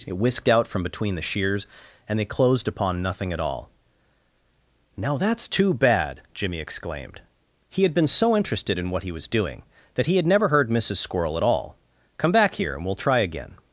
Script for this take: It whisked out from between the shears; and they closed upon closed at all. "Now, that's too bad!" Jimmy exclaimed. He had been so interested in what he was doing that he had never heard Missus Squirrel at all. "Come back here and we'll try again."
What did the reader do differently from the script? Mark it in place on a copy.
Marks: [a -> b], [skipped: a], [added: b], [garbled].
It whisked out from between the shears; and they closed upon [closed -> nothing] at all. "Now, that's too bad!" Jimmy exclaimed. He had been so interested in what he was doing that he had never heard Missus Squirrel at all. "Come back here and we'll try again."